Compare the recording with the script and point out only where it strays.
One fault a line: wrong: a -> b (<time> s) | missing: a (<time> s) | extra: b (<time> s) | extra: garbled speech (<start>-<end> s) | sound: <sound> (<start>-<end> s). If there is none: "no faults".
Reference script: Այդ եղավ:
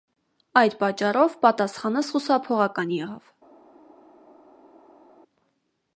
extra: պատճառով պատասխանս խուսափողական (0.8 s)